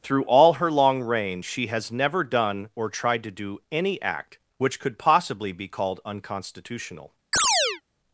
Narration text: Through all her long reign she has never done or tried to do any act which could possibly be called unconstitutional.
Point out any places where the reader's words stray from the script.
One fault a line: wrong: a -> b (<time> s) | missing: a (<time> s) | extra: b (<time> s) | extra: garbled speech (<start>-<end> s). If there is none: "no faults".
no faults